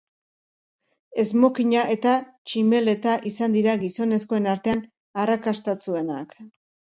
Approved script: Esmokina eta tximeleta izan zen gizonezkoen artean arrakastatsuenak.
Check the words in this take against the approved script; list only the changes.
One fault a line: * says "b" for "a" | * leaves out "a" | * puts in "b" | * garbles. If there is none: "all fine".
* says "dira" for "zen"